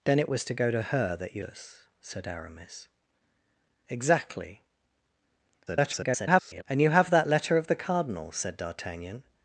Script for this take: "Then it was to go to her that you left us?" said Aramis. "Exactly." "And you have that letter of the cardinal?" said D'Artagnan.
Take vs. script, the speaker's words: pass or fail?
fail